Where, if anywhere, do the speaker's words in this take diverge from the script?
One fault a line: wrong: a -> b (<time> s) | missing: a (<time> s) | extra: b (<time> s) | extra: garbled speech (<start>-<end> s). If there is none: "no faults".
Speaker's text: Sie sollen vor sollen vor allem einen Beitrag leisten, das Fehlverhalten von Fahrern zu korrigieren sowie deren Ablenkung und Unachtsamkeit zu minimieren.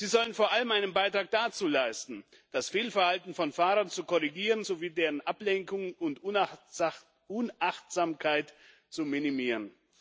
missing: sollen vor (0.5 s)
extra: dazu (1.3 s)